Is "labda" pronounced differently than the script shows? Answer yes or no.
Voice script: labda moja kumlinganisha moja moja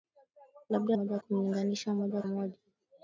no